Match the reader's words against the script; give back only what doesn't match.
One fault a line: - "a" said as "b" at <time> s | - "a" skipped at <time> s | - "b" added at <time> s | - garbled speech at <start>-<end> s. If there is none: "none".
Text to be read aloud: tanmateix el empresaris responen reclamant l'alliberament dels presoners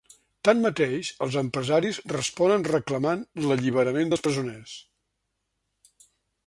- "el" said as "els" at 1.2 s